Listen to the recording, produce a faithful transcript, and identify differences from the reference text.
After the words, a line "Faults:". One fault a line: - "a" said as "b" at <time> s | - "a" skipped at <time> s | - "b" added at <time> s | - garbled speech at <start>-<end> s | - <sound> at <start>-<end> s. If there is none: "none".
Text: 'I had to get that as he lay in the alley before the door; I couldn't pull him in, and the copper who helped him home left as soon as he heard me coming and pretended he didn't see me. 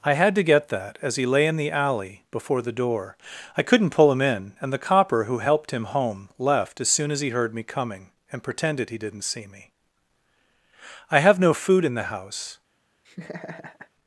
'I had to get that as he lay in the alley before the door; I couldn't pull him in, and the copper who helped him home left as soon as he heard me coming and pretended he didn't see me. I have no food in the house
Faults:
- "I have no food in the house" added at 11.1 s
- laugh at 13.0-13.9 s